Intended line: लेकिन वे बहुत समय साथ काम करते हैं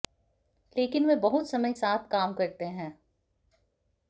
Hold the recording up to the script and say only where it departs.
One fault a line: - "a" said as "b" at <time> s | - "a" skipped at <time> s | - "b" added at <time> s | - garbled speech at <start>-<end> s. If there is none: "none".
none